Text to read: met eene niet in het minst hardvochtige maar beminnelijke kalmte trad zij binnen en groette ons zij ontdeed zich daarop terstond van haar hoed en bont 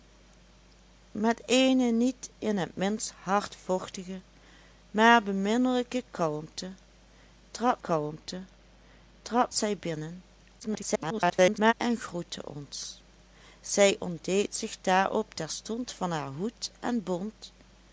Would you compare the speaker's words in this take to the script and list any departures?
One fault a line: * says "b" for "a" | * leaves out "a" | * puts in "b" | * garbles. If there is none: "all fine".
* puts in "kalmte trad"
* garbles